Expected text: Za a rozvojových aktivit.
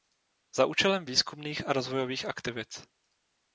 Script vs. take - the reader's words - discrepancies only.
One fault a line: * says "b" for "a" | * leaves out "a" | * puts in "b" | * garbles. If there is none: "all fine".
* puts in "účelem výzkumných"